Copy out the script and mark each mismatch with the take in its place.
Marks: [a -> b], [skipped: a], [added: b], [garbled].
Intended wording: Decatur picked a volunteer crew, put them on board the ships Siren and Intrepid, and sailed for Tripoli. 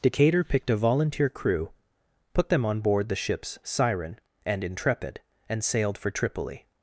Decatur picked a volunteer crew, put them on board the ships Siren and Intrepid, and sailed for Tripoli.